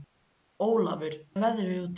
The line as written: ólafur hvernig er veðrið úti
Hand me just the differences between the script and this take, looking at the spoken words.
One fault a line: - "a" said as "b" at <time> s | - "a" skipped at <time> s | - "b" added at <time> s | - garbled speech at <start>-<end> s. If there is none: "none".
- "hvernig" skipped at 1.2 s